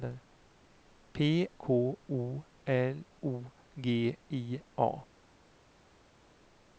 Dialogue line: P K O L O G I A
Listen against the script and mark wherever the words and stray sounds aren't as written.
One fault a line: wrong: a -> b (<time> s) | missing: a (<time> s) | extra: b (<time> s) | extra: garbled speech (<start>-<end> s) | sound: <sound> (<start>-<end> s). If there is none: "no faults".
no faults